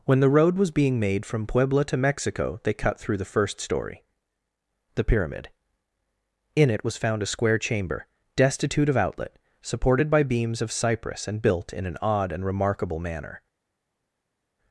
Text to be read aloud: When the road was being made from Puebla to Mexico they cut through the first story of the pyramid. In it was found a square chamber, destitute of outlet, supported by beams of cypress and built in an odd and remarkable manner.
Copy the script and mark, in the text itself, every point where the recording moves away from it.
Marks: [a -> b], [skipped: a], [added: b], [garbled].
When the road was being made from Puebla to Mexico they cut through the first story [skipped: of] the pyramid. In it was found a square chamber, destitute of outlet, supported by beams of cypress and built in an odd and remarkable manner.